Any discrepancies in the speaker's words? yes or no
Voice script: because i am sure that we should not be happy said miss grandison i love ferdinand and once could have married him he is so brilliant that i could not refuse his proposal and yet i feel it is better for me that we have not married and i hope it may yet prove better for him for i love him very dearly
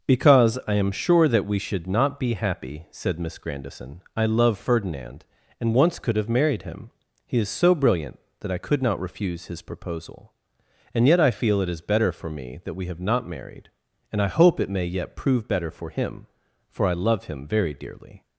no